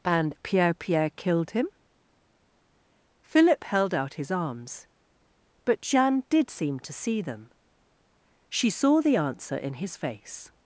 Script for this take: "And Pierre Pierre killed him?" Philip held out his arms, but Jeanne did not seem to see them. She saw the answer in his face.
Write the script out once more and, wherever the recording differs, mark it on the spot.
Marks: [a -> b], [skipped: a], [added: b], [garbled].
"And Pierre Pierre killed him?" Philip held out his arms, but Jeanne did [skipped: not] seem to see them. She saw the answer in his face.